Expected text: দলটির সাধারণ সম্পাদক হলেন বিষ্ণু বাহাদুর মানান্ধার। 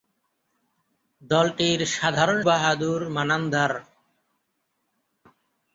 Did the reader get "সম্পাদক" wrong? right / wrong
wrong